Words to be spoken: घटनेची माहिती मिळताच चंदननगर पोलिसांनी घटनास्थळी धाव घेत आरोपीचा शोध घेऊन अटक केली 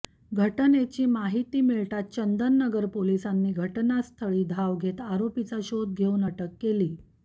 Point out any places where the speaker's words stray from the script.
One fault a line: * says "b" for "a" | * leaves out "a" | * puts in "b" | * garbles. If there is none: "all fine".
all fine